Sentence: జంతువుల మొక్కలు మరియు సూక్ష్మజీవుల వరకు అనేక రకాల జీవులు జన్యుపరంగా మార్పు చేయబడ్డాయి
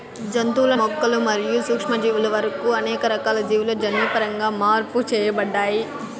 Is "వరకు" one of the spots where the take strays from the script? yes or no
no